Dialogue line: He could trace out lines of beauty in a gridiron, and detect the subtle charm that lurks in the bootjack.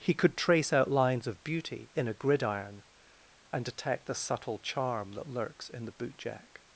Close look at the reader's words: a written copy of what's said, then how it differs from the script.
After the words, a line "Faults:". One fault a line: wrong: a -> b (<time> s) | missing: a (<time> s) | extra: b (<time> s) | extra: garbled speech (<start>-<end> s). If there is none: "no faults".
He could trace out lines of beauty in a gridiron, and detect the subtle charm that lurks in the bootjack.
Faults:
no faults